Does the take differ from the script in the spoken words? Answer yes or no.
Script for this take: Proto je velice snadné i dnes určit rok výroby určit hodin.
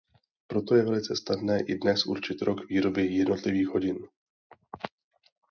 yes